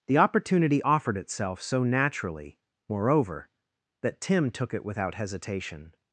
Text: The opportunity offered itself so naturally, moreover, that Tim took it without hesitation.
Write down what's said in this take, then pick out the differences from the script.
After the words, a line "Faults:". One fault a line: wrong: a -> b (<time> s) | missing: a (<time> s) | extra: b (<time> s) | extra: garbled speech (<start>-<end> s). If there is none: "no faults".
The opportunity offered itself so naturally, moreover, that Tim took it without hesitation.
Faults:
no faults